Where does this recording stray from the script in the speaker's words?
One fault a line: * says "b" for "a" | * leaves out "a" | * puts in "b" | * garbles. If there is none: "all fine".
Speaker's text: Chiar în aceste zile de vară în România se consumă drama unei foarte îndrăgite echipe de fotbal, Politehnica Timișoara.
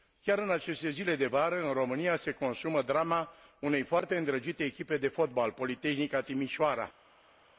all fine